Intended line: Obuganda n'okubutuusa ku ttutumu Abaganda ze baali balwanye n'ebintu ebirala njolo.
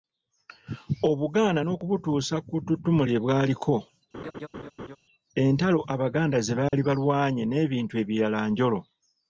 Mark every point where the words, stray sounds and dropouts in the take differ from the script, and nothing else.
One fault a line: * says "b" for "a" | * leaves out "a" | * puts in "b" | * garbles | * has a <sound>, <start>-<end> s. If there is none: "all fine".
* puts in "lye Bwaliko entalo"
* has a laugh, 4.1-5.0 s
* has a dropout, 6.7-6.7 s